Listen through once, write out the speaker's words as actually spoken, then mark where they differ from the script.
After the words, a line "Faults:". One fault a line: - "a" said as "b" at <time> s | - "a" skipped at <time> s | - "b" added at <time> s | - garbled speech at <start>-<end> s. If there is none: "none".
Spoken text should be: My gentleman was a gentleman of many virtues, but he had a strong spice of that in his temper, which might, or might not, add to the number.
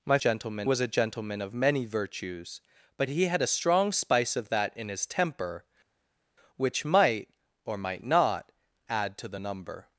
My gentleman was a gentleman of many virtues, but he had a strong spice of that in his temper, which might, or might not, add to the number.
Faults:
none